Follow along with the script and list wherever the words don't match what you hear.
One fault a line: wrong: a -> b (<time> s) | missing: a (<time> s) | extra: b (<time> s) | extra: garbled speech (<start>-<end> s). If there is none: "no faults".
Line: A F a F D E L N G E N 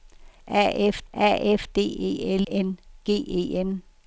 no faults